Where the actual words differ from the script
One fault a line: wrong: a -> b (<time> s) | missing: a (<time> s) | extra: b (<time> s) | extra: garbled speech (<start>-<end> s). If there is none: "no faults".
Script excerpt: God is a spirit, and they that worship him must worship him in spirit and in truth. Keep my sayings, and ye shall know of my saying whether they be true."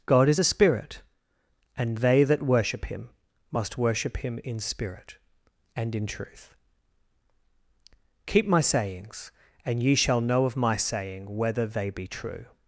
no faults